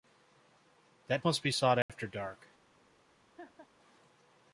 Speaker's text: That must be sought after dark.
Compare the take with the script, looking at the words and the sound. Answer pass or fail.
fail